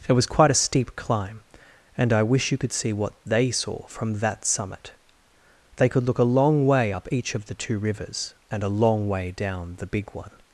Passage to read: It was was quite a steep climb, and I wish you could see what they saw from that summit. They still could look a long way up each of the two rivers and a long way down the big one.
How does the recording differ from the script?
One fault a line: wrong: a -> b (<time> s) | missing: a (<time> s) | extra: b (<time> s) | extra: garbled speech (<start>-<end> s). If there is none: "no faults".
missing: was (0.2 s)
missing: still (5.9 s)